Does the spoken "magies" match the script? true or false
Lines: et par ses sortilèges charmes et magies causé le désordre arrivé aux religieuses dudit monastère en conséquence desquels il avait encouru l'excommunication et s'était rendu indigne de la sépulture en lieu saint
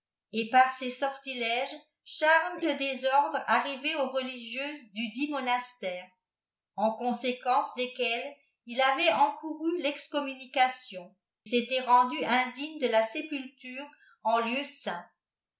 false